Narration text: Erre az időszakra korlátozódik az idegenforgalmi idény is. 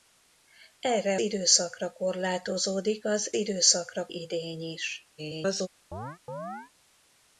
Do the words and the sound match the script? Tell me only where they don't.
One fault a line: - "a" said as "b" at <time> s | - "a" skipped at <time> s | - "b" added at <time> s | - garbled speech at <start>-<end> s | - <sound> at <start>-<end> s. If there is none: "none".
- "az" skipped at 1.2 s
- "idegenforgalmi" said as "időszakra" at 3.3 s
- garbled speech at 5.2-5.7 s
- chirp at 5.9-6.7 s